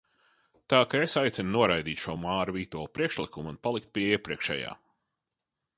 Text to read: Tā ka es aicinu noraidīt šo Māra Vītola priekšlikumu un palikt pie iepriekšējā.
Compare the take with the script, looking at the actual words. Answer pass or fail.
pass